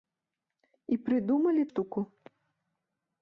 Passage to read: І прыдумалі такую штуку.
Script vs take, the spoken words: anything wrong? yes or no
yes